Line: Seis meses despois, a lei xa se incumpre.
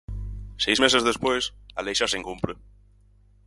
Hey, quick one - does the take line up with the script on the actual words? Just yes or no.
yes